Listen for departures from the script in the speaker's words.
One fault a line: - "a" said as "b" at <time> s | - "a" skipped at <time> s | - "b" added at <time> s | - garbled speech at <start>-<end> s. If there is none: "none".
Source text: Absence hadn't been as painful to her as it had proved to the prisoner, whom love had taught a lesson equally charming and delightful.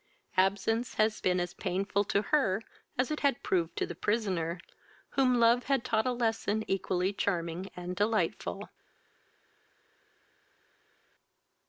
- "hadn't" said as "had" at 0.9 s